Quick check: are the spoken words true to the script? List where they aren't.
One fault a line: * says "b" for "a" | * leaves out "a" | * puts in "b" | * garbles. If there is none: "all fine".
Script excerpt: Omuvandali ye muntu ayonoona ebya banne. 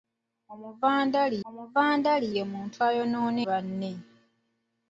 * puts in "omuvandali"
* leaves out "ebya"